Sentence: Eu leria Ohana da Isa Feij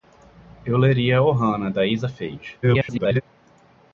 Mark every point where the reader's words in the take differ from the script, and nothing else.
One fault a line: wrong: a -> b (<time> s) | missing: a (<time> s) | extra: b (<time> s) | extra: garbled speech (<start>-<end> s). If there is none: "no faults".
extra: garbled speech (2.6-3.2 s)